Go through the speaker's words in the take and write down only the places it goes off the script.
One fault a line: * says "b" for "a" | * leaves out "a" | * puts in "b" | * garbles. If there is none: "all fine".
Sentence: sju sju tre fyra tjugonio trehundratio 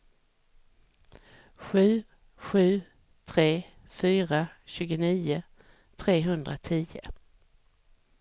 all fine